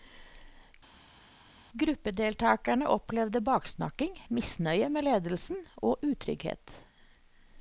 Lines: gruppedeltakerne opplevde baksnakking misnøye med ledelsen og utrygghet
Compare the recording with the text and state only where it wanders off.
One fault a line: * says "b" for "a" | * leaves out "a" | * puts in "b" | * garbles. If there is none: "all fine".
all fine